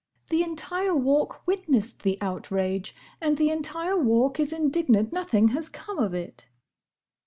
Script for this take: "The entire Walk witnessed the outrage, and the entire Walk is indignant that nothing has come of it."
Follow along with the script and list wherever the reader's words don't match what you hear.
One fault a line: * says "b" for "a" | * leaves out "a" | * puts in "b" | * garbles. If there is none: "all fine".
* leaves out "that"